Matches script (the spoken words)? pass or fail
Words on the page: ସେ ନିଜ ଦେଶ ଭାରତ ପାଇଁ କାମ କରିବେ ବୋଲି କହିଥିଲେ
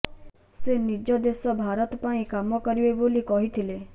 pass